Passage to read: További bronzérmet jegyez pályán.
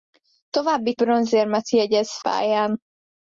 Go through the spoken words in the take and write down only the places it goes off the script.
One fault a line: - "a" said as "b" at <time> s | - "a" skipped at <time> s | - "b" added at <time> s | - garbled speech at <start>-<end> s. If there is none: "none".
none